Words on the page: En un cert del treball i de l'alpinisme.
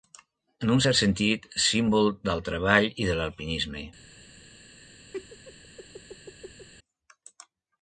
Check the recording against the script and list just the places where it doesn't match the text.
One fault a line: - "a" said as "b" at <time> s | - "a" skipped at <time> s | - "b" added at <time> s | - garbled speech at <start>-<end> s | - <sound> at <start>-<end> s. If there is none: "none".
- "sentit símbol" added at 1.0 s
- laugh at 5.1-6.7 s